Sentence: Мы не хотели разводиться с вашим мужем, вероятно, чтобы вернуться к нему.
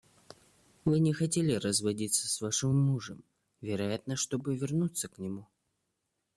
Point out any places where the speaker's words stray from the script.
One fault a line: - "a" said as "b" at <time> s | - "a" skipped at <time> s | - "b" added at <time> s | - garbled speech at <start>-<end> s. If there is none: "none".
- "Мы" said as "Вы" at 0.8 s